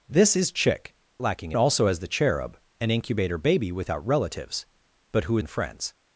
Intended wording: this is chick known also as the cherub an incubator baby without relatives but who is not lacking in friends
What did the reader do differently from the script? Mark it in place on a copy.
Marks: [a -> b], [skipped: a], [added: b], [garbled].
this is chick [known -> lacking] also as the cherub an incubator baby without relatives but who [skipped: is not lacking] in friends